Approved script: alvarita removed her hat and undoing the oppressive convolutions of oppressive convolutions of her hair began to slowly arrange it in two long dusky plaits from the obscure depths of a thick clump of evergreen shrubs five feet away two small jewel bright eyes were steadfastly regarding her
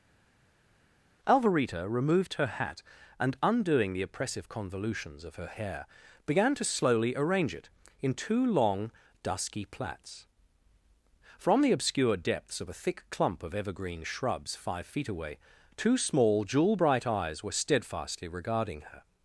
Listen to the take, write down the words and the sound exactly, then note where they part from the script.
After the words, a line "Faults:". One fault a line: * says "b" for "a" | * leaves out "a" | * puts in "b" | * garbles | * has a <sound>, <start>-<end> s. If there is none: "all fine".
alvarita removed her hat and undoing the oppressive convolutions of her hair began to slowly arrange it in two long dusky plaits from the obscure depths of a thick clump of evergreen shrubs five feet away two small jewel bright eyes were steadfastly regarding her
Faults:
* leaves out "oppressive convolutions of"